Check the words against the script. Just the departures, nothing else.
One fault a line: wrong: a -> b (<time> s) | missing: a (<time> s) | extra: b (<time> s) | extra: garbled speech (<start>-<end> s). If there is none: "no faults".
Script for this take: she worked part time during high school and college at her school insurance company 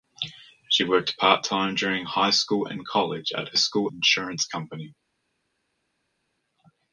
no faults